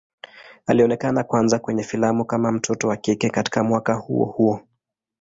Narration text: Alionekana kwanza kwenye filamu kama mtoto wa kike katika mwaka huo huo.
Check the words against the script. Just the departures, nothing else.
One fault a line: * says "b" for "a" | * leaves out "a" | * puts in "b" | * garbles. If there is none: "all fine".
all fine